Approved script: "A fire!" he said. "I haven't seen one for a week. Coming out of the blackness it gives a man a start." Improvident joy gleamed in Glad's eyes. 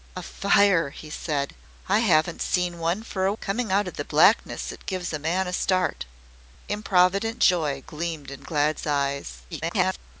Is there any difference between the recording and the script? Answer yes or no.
yes